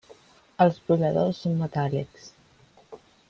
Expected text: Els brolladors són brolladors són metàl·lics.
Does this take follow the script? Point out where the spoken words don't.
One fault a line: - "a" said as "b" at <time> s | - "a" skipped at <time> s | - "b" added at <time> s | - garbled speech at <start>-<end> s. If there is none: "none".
- "brolladors són" skipped at 1.6 s